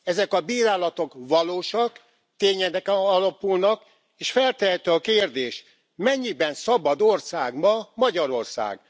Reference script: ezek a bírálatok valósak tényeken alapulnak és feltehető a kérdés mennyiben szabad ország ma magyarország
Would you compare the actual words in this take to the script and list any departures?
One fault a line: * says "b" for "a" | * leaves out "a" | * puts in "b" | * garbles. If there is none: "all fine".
all fine